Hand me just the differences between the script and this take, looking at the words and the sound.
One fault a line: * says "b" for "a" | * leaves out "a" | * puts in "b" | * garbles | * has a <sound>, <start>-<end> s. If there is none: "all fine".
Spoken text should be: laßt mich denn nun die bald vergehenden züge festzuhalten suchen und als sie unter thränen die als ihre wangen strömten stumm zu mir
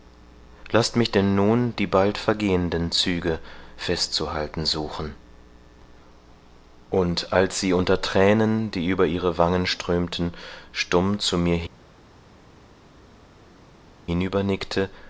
* says "über" for "als"